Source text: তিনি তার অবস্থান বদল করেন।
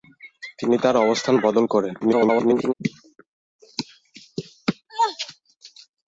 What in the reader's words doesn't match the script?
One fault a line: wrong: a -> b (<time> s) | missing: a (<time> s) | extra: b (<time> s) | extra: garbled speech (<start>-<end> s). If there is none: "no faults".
extra: garbled speech (2.0-2.7 s)